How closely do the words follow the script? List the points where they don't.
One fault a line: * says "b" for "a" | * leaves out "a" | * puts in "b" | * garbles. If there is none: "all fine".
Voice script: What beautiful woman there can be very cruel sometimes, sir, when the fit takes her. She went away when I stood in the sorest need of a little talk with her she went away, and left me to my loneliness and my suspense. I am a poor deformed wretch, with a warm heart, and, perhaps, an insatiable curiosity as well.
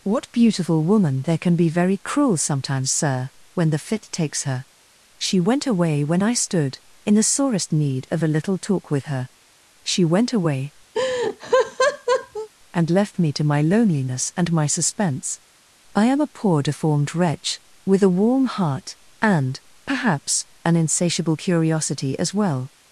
all fine